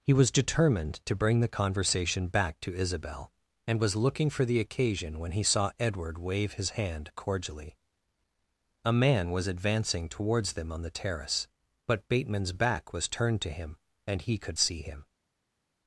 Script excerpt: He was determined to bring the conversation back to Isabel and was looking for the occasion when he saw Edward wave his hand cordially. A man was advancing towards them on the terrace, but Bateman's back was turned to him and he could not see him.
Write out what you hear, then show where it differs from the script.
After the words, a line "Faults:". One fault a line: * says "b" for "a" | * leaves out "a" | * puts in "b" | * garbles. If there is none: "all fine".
He was determined to bring the conversation back to Isabel and was looking for the occasion when he saw Edward wave his hand cordially. A man was advancing towards them on the terrace, but Bateman's back was turned to him and he could see him.
Faults:
* leaves out "not"